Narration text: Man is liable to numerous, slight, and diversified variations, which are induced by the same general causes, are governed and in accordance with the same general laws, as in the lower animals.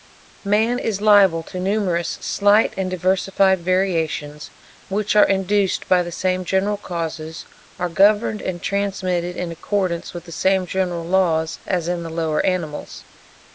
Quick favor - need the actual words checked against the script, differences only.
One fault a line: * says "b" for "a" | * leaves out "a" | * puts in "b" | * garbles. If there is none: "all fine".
* puts in "transmitted"